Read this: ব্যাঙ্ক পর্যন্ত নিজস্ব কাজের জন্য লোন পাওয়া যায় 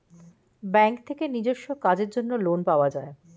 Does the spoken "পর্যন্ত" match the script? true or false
false